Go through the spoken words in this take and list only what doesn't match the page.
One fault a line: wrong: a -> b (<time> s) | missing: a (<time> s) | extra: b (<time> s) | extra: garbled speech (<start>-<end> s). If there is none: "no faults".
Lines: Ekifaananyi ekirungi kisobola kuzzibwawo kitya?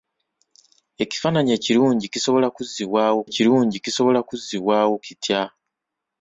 extra: ekirungi kisobola kuzzibwawo (3.3 s)